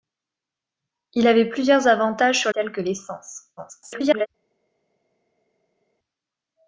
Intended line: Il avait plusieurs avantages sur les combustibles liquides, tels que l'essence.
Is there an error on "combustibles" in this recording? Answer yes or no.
yes